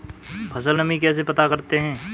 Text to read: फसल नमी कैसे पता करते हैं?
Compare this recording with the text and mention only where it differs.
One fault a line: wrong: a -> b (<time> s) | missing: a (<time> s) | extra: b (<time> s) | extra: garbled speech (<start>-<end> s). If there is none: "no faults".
no faults